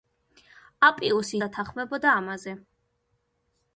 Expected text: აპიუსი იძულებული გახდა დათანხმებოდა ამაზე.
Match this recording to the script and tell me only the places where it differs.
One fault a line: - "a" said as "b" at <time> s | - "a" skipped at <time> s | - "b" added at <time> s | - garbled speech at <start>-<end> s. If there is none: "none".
- "იძულებული გახდა" skipped at 1.4 s